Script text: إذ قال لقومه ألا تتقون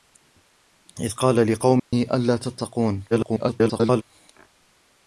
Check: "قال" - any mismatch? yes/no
no